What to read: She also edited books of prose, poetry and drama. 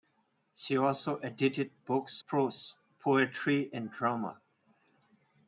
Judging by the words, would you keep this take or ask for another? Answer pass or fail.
fail